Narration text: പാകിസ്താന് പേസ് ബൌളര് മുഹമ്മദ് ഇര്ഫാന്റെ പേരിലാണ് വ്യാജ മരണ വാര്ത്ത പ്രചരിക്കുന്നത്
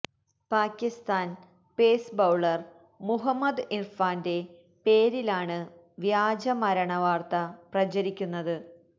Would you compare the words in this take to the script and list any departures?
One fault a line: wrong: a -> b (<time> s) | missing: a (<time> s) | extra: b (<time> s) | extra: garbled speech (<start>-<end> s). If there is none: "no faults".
no faults